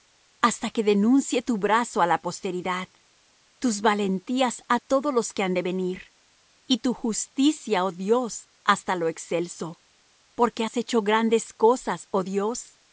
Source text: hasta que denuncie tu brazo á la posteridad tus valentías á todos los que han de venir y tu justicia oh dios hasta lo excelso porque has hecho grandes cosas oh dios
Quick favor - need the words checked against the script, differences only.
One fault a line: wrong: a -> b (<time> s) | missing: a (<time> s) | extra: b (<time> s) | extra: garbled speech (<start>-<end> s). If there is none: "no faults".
no faults